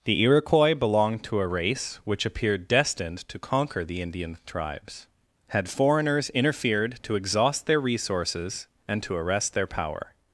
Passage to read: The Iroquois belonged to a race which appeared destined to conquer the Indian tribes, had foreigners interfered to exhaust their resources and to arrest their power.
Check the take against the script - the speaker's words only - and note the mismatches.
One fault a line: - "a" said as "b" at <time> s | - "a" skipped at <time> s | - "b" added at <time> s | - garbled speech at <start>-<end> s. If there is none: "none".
none